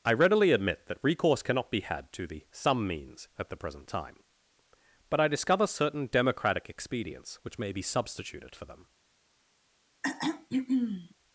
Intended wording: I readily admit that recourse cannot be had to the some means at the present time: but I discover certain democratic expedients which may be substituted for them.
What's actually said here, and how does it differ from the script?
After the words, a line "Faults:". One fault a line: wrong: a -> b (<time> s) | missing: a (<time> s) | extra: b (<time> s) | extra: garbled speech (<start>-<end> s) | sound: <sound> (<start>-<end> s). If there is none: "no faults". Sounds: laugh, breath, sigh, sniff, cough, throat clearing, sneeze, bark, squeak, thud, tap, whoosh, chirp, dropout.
I readily admit that recourse cannot be had to the some means at the present time: but I discover certain democratic expedients which may be substituted for them.
Faults:
sound: throat clearing (10.0-11.1 s)